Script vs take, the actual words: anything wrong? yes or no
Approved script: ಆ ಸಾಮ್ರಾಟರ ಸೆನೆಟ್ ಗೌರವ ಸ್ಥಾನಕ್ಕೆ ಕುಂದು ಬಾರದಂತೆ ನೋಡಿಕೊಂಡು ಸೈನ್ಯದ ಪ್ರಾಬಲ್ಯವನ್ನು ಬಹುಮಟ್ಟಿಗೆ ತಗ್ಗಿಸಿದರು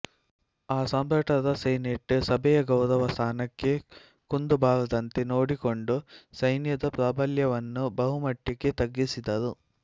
yes